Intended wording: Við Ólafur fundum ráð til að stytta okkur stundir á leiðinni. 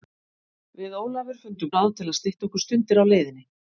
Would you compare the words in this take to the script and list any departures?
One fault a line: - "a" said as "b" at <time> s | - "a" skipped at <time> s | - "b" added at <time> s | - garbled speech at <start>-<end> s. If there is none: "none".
none